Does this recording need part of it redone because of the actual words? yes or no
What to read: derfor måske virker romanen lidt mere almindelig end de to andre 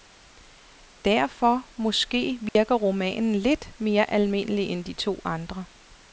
no